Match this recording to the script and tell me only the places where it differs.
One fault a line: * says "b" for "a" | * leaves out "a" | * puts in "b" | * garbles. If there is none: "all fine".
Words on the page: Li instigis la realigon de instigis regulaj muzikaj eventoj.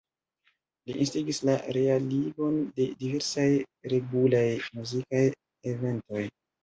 * says "diversaj" for "instigis"